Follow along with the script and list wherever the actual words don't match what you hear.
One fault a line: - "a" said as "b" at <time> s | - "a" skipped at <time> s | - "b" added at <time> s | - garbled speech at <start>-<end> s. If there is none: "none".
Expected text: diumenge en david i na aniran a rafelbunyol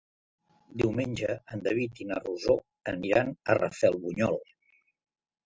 - "rosó" added at 2.2 s